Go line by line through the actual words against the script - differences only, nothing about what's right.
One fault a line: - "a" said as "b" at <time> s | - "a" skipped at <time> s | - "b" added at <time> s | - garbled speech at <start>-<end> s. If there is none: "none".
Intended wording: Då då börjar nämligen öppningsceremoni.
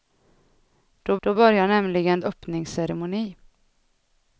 none